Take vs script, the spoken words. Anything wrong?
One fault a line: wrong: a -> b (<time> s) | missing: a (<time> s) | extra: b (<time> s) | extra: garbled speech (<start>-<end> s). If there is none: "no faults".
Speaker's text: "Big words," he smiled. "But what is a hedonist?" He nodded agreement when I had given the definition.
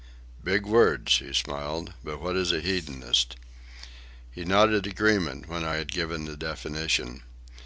no faults